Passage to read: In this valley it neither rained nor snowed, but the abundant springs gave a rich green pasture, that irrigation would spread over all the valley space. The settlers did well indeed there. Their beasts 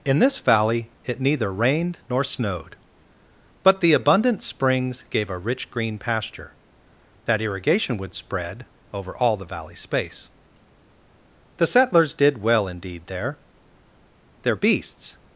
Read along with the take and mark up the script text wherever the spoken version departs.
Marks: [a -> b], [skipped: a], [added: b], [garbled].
In this valley it neither rained nor snowed, but the abundant springs gave a rich green pasture, that irrigation would spread over all the valley space. The settlers did well indeed there. Their beasts